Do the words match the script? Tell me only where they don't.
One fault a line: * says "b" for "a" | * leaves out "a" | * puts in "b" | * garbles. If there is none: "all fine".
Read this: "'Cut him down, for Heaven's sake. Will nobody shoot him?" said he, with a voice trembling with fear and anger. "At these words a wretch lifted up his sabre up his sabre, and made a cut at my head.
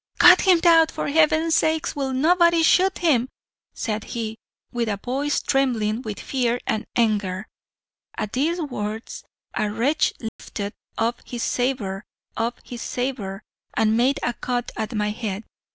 all fine